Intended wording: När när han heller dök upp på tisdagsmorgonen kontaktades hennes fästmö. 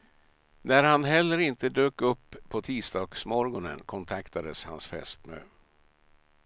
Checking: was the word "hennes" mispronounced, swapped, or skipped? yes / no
yes